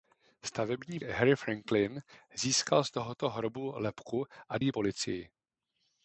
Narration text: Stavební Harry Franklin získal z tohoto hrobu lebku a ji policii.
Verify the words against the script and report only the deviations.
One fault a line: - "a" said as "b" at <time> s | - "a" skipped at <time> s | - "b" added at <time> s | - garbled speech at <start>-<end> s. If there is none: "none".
none